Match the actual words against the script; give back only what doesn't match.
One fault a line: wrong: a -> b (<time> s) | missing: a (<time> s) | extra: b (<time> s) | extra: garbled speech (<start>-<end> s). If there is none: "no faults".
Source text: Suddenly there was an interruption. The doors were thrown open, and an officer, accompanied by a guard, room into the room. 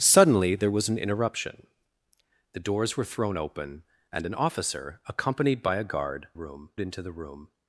no faults